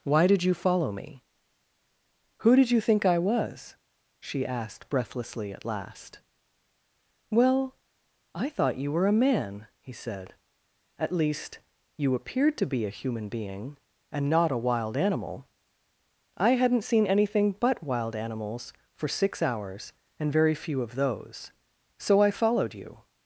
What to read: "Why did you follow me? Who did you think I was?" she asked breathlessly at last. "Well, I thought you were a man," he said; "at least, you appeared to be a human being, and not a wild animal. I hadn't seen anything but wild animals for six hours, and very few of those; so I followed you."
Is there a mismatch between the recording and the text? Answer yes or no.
no